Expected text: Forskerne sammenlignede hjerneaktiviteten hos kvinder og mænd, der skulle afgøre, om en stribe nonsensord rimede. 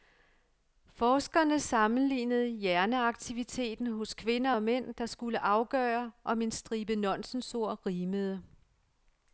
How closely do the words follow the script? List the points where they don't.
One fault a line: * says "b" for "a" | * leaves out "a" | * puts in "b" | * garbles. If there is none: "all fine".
all fine